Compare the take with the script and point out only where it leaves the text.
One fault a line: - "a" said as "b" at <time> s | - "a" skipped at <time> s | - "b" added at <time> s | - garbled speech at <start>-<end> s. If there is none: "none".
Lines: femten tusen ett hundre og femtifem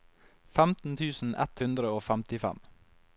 none